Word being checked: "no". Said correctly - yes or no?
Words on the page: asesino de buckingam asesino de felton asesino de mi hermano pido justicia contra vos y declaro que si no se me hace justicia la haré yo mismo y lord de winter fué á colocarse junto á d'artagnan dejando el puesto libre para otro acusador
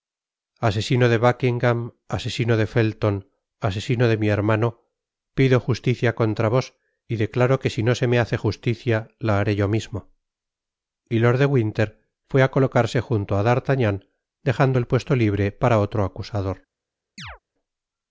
yes